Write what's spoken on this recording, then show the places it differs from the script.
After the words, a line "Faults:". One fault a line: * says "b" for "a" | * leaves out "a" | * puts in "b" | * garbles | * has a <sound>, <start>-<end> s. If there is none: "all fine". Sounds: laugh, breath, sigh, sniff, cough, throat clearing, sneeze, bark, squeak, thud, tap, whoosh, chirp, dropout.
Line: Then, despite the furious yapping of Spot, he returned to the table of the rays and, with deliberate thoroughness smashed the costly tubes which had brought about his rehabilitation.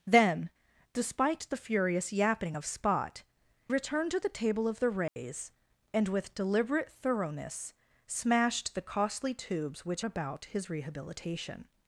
Then, despite the furious yapping of Spot, returned to the table of the rays and, with deliberate thoroughness smashed the costly tubes which about his rehabilitation.
Faults:
* leaves out "he"
* has a dropout, 5.1-5.2 s
* leaves out "had brought"